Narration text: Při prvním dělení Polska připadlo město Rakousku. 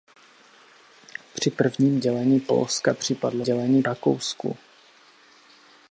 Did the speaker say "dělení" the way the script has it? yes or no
yes